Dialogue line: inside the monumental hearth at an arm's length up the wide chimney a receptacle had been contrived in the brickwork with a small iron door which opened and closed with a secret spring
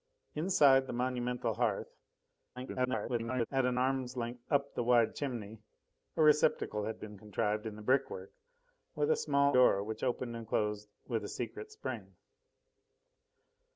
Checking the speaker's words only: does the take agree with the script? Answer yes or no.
no